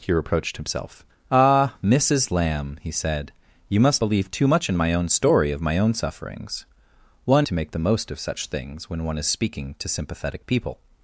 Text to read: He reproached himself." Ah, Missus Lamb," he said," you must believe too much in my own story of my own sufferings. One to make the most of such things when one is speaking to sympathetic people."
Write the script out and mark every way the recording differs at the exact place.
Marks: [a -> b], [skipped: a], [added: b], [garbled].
He reproached himself." Ah, Missus Lamb," he said," you must believe too much in my own story of my own sufferings. One to make the most of such things when one is speaking to sympathetic people."